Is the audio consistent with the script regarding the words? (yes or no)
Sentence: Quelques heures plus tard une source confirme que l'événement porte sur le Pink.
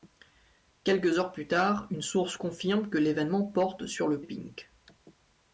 yes